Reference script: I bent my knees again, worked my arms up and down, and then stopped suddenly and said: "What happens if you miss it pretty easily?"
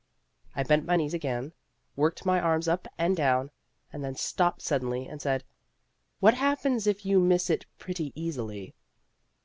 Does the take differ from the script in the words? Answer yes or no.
no